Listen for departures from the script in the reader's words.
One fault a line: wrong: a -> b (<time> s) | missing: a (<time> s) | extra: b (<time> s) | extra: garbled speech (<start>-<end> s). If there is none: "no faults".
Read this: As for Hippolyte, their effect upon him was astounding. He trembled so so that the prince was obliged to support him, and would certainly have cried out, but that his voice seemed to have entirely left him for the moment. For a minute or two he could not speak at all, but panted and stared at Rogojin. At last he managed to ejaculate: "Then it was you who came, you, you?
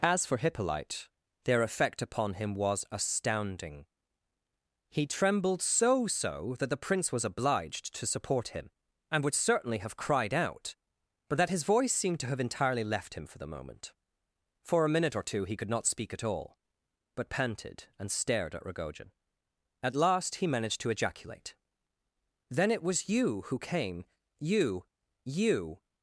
no faults